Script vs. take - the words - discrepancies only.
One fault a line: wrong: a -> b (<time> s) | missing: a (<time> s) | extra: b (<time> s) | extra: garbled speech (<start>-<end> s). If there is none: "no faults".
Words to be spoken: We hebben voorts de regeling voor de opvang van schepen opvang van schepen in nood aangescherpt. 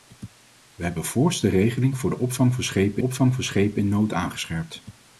no faults